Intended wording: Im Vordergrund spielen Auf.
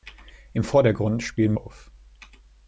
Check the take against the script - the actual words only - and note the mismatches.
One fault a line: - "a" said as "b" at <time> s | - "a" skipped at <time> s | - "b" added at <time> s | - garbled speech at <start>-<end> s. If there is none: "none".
none